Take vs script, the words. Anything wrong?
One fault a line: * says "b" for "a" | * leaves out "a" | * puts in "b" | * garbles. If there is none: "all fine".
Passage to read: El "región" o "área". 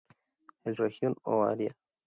all fine